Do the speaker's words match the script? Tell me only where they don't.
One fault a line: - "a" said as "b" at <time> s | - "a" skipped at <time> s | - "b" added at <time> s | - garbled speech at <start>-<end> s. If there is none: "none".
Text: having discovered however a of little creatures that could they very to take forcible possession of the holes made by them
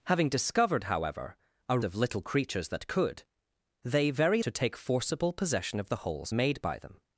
none